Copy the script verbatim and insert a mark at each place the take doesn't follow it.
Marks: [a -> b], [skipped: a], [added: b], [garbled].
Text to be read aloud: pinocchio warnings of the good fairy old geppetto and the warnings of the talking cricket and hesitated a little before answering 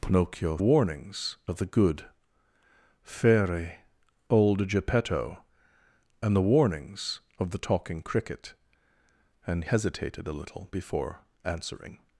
pinocchio warnings of the good fairy old geppetto and the warnings of the talking cricket and hesitated a little before answering